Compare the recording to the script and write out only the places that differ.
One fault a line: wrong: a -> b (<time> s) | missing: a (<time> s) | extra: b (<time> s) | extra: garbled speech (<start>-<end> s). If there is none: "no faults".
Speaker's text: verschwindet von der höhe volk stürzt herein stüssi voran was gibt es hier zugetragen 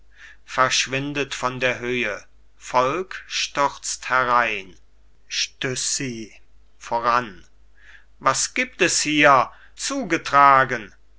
no faults